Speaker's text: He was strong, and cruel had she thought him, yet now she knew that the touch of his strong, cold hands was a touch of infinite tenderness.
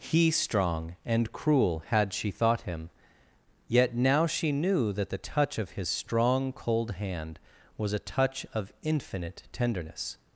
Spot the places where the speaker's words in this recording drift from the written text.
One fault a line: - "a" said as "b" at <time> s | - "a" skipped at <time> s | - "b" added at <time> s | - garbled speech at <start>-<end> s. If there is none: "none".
- "was" skipped at 0.3 s
- "hands" said as "hand" at 6.9 s